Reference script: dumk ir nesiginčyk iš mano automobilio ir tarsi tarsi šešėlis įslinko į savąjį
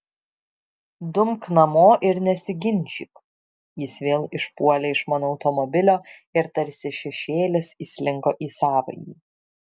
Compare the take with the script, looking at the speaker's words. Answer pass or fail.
fail